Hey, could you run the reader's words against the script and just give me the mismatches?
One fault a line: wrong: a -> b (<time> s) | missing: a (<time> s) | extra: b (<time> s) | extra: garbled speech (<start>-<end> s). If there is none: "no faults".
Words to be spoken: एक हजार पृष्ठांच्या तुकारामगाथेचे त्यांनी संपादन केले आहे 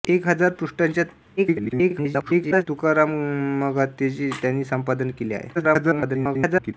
extra: garbled speech (1.4-2.7 s)
extra: garbled speech (5.5-6.7 s)